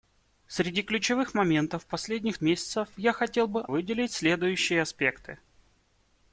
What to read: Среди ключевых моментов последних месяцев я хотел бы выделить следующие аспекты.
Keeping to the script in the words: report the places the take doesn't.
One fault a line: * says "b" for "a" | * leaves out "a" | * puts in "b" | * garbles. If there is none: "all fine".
all fine